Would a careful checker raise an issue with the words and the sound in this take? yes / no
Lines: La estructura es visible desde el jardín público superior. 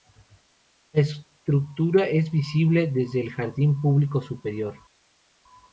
no